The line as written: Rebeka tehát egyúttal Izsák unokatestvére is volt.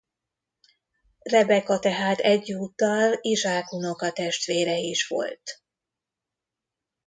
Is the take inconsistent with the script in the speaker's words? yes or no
no